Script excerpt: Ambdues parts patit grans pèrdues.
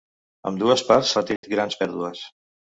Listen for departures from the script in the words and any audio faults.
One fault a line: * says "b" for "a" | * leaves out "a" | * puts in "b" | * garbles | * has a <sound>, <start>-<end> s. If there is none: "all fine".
* has a dropout, 1.4-1.4 s